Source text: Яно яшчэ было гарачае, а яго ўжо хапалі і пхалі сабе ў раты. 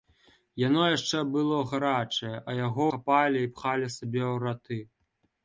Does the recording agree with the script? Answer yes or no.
no